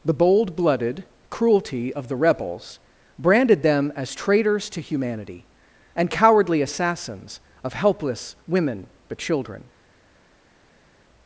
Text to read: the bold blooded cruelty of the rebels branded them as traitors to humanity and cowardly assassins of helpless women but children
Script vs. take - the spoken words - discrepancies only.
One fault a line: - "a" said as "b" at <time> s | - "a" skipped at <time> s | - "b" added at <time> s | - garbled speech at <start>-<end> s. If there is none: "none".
none